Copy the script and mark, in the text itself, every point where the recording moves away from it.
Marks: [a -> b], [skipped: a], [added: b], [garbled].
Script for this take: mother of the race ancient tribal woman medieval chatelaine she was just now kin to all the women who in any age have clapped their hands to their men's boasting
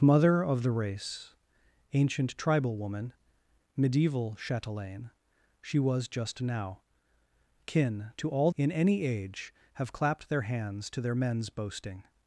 mother of the race ancient tribal woman medieval chatelaine she was just now kin to all [skipped: the women who] in any age have clapped their hands to their men's boasting